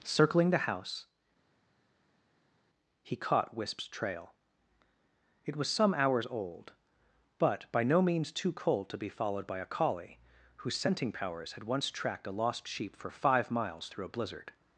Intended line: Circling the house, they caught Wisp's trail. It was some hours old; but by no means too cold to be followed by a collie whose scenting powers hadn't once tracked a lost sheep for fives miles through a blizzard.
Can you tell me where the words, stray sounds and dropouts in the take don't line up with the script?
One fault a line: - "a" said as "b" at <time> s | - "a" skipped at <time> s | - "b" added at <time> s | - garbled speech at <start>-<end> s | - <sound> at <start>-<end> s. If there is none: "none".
- "they" said as "he" at 3.0 s
- "hadn't" said as "had" at 11.5 s
- "fives" said as "five" at 13.1 s